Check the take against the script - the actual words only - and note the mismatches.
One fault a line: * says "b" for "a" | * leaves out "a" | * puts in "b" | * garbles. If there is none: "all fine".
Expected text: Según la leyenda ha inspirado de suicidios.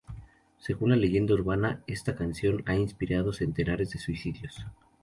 * puts in "urbana esta canción"
* puts in "centenares"